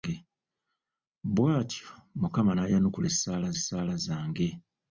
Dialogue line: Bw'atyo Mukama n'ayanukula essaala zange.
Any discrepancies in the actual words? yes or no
yes